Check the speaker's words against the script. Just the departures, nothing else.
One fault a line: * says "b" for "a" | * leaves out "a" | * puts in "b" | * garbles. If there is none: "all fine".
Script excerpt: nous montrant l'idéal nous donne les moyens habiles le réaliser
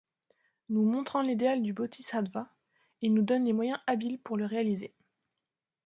* puts in "du bodhisattva il"
* puts in "pour"